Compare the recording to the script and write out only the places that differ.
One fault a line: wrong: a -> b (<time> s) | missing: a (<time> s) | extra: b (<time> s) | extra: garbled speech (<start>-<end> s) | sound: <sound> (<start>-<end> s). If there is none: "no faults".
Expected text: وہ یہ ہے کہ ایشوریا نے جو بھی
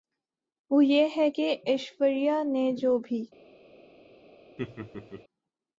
sound: laugh (4.6-5.2 s)